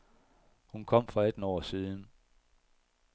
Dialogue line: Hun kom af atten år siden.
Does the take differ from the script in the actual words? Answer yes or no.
yes